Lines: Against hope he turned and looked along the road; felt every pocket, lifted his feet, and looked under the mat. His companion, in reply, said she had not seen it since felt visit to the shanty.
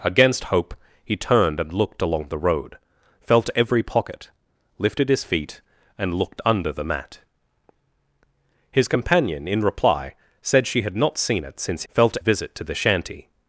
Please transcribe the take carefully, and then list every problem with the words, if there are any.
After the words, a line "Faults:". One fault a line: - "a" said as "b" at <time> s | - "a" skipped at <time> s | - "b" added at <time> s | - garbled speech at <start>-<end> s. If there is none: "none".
Against hope he turned and looked along the road; felt every pocket, lifted his feet, and looked under the mat. His companion, in reply, said she had not seen it since felt visit to the shanty.
Faults:
none